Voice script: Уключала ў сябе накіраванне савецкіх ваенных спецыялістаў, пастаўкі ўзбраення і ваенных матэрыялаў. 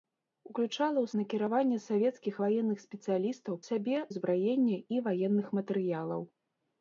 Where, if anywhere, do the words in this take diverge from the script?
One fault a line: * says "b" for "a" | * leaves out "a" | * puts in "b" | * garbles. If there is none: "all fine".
* leaves out "сябе"
* says "сябе" for "пастаўкі"